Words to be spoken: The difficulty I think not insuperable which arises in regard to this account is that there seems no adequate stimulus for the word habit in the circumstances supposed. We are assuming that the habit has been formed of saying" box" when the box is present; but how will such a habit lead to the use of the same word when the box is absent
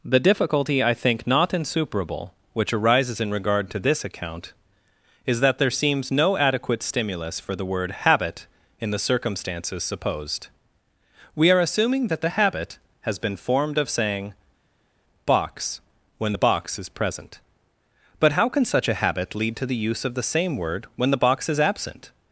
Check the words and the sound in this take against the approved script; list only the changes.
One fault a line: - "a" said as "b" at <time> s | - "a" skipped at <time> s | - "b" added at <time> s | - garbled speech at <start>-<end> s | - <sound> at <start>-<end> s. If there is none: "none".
- "will" said as "can" at 18.5 s